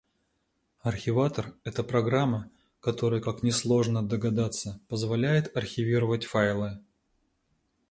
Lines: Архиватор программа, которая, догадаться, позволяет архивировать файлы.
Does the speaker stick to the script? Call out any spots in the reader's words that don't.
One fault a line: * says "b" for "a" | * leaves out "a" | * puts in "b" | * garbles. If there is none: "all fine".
* puts in "это"
* puts in "как несложно"